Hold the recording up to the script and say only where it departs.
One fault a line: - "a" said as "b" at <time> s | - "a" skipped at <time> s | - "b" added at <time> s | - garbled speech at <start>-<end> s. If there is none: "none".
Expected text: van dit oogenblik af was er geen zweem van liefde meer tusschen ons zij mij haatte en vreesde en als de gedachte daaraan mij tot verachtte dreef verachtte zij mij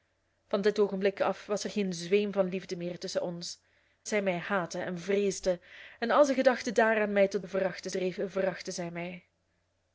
none